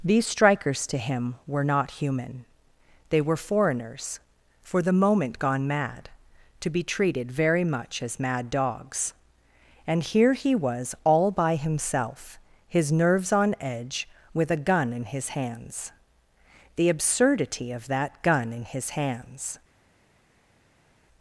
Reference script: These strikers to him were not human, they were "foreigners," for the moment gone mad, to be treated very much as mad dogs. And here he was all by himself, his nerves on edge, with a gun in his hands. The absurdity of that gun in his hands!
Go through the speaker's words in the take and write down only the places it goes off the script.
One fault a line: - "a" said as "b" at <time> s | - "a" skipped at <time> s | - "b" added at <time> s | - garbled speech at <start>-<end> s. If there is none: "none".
none